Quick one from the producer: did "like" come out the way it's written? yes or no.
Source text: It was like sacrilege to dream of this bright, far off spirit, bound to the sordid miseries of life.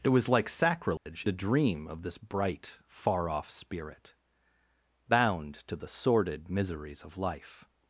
yes